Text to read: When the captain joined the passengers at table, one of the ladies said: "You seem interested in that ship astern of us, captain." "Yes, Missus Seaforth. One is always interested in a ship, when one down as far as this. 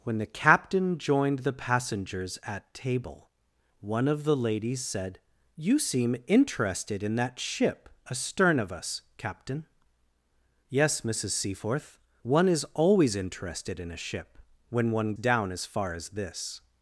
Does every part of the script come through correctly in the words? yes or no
yes